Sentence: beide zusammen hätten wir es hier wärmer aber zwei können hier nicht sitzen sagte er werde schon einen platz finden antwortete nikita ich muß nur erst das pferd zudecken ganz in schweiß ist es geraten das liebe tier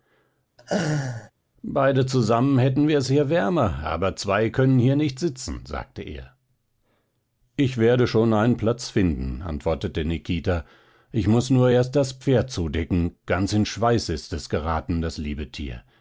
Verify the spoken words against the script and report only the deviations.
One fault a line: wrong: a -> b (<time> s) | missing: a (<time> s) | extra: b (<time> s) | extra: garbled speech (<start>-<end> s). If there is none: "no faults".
extra: ich (7.6 s)